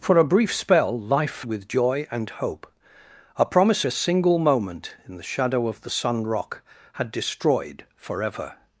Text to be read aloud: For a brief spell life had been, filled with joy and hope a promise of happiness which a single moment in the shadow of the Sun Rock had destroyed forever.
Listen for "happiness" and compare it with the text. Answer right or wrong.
wrong